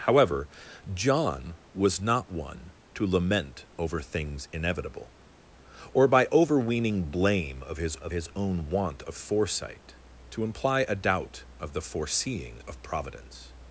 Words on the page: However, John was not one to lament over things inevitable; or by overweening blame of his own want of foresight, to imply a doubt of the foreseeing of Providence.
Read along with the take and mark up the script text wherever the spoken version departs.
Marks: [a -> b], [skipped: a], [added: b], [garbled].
However, John was not one to lament over things inevitable; or by overweening blame of his [added: of his] own want of foresight, to imply a doubt of the foreseeing of Providence.